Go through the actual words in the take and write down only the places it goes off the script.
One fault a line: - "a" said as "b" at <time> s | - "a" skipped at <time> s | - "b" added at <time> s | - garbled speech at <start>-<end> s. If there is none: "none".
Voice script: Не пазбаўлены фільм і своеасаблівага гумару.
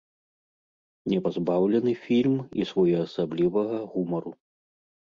none